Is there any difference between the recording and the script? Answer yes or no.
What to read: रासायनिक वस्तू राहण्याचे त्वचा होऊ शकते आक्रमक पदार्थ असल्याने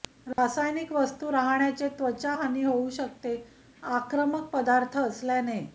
yes